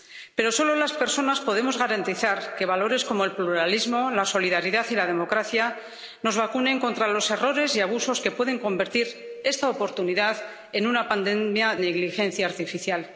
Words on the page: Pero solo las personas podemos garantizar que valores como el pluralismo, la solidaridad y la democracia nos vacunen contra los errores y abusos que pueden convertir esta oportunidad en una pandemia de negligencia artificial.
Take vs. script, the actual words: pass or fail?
fail